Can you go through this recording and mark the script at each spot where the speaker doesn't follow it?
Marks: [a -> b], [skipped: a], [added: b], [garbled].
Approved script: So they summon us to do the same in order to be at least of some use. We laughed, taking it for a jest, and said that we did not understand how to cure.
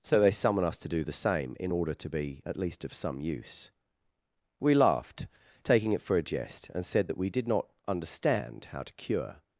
So they summon us to do the same in order to be at least of some use. We laughed, taking it for a jest, and said that we did not understand how to cure.